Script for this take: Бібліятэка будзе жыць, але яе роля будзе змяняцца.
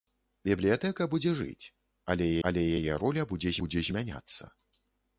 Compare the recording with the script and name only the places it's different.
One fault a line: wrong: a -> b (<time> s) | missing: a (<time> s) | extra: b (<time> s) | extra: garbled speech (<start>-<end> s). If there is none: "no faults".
extra: але (2.5 s)
extra: будзе (3.6 s)